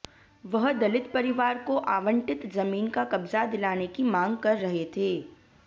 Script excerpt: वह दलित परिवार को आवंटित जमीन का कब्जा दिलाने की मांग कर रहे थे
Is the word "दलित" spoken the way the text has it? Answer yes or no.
yes